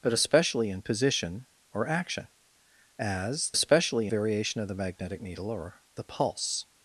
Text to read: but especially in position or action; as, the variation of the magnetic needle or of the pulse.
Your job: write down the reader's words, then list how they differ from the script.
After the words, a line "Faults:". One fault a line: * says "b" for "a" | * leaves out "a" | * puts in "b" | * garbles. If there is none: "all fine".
but especially in position or action; as, especially variation of the magnetic needle or the pulse.
Faults:
* says "especially" for "the"
* leaves out "of"